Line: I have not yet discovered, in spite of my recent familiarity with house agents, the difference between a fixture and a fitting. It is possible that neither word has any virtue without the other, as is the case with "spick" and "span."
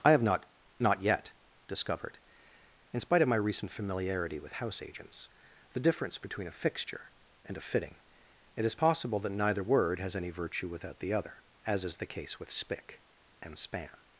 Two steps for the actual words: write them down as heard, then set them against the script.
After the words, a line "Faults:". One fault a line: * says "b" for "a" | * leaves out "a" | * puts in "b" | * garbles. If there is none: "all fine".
I have not not yet discovered, in spite of my recent familiarity with house agents, the difference between a fixture and a fitting. It is possible that neither word has any virtue without the other, as is the case with "spick" and "span."
Faults:
* puts in "not"